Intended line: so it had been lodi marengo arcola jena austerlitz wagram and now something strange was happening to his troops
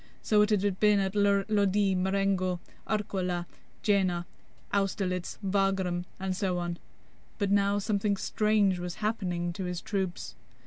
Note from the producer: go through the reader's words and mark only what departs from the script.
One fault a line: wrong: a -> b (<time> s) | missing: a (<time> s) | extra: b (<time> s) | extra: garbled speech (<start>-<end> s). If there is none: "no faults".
extra: at (1.0 s)
extra: so on but (6.3 s)